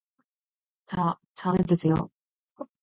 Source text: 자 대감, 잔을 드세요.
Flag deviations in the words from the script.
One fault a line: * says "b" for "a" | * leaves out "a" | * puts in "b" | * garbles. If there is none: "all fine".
* leaves out "대감"